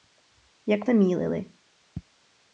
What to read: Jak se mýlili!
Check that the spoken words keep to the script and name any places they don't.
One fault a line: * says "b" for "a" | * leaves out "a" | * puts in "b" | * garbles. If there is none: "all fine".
all fine